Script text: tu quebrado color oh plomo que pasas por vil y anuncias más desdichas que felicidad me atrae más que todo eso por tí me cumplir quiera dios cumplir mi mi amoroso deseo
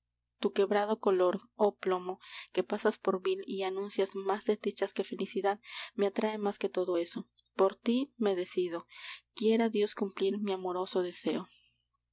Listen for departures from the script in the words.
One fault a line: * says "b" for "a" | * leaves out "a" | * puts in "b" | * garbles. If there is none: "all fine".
* says "decido" for "cumplir"
* leaves out "mi"